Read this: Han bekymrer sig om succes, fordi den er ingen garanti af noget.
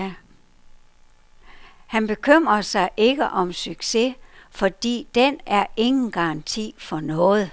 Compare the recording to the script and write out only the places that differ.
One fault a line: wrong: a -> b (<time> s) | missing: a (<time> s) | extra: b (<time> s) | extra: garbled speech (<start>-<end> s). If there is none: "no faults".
extra: ikke (3.0 s)
wrong: af -> for (6.8 s)